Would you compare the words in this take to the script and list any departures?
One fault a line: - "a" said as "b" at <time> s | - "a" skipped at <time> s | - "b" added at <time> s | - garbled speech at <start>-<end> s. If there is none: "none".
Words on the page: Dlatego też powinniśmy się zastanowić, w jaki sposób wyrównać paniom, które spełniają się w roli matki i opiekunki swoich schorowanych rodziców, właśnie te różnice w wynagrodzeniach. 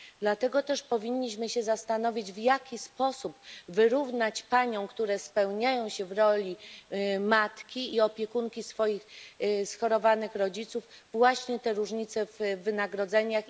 none